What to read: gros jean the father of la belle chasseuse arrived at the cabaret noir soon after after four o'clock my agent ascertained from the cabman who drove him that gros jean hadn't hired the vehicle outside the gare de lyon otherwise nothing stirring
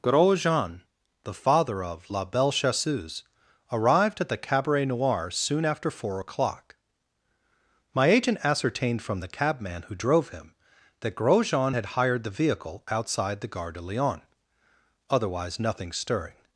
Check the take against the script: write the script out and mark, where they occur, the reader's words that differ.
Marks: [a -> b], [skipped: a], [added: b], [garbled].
gros jean the father of la belle chasseuse arrived at the cabaret noir soon after [skipped: after] four o'clock my agent ascertained from the cabman who drove him that gros jean [hadn't -> had] hired the vehicle outside the gare de lyon otherwise nothing stirring